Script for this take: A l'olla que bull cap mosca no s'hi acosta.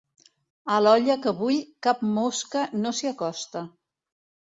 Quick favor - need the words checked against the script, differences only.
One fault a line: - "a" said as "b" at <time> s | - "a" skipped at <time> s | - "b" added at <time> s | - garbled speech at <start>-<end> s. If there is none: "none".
none